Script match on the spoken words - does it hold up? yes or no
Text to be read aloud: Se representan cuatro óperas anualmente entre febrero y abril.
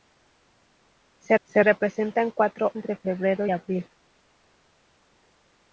no